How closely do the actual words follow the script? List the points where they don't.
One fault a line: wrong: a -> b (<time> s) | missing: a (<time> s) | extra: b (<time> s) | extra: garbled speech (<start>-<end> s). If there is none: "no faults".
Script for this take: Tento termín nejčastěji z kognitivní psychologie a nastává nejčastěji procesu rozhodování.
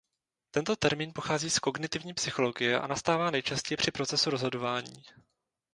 wrong: nejčastěji -> pochází (1.1 s)
extra: při (3.8 s)